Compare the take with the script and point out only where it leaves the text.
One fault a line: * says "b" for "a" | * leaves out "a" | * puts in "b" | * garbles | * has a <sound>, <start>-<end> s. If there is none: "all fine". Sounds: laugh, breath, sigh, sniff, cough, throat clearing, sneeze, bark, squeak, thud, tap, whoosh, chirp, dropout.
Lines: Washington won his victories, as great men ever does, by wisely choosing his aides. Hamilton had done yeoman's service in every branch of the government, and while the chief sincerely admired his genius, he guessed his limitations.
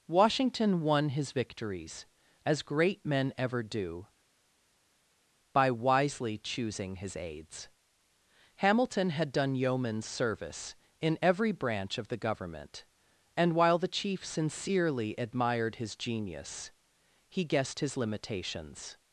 * says "do" for "does"